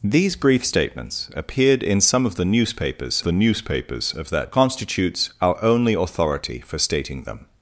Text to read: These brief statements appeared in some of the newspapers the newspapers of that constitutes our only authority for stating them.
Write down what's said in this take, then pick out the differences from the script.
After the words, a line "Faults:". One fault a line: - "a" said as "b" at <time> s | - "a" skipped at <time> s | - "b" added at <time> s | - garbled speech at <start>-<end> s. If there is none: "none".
These brief statements appeared in some of the newspapers the newspapers of that constitutes our only authority for stating them.
Faults:
none